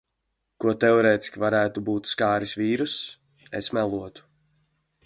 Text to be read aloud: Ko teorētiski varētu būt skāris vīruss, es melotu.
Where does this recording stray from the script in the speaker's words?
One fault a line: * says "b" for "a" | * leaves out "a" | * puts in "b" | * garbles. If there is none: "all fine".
all fine